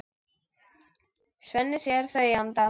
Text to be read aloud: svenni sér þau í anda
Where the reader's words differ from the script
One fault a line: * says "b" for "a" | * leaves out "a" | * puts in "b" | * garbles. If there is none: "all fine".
all fine